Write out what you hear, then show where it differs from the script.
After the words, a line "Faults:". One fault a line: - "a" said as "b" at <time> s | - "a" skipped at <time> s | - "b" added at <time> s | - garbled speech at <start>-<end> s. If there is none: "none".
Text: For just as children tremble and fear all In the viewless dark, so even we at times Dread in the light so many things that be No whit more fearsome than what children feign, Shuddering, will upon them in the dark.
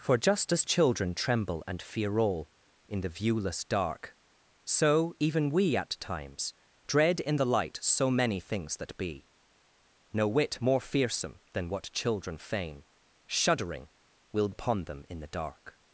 For just as children tremble and fear all In the viewless dark, so even we at times Dread in the light so many things that be No whit more fearsome than what children feign, Shuddering, will upon them in the dark.
Faults:
none